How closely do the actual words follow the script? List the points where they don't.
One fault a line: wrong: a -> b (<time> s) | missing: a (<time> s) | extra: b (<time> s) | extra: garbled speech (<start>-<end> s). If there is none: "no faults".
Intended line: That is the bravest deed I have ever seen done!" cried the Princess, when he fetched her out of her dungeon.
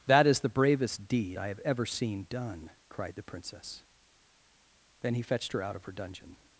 wrong: when -> then (5.0 s)